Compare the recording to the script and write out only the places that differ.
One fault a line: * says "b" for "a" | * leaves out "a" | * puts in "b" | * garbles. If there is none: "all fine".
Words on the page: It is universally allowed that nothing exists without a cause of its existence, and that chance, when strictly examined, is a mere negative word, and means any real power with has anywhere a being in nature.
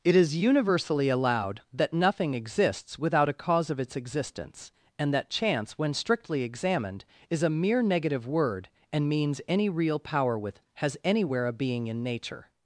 all fine